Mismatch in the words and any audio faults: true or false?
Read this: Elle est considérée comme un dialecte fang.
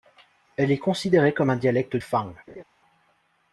true